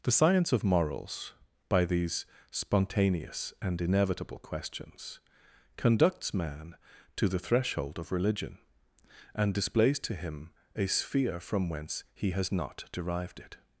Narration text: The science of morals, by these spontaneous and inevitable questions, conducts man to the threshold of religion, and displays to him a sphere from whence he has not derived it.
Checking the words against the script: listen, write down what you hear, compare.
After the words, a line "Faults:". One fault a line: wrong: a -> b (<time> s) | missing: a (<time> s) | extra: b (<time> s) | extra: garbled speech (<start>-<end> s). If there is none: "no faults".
The science of morals, by these spontaneous and inevitable questions, conducts man to the threshold of religion, and displays to him a sphere from whence he has not derived it.
Faults:
no faults